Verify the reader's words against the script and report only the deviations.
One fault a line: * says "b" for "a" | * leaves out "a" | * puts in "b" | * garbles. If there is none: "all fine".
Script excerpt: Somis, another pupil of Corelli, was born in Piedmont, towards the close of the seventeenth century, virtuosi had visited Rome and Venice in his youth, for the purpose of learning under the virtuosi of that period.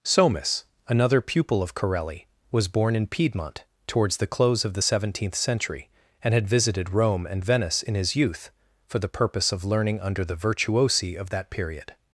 * says "and" for "virtuosi"